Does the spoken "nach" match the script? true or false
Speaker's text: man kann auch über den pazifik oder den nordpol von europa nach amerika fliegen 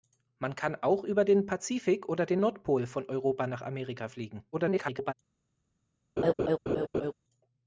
true